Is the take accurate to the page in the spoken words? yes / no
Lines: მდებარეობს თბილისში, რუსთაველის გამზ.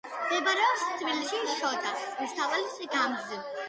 no